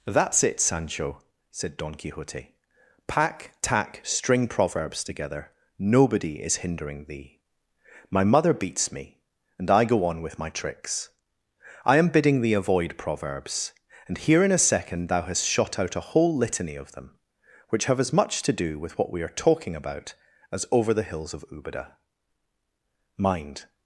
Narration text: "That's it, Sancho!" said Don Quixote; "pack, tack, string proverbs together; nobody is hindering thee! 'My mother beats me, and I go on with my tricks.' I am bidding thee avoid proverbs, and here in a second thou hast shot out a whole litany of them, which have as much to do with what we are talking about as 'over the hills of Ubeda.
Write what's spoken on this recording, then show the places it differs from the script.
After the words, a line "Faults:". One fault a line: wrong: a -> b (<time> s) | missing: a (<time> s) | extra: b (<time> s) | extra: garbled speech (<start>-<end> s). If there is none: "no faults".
"That's it, Sancho!" said Don Quixote; "pack, tack, string proverbs together; nobody is hindering thee! 'My mother beats me, and I go on with my tricks.' I am bidding thee avoid proverbs, and here in a second thou hast shot out a whole litany of them, which have as much to do with what we are talking about as 'over the hills of Ubeda. Mind
Faults:
extra: Mind (23.2 s)